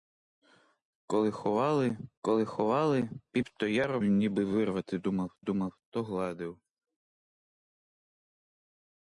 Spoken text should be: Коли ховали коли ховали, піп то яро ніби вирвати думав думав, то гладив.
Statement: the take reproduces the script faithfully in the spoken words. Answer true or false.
true